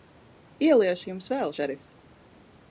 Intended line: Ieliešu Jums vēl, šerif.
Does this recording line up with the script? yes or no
yes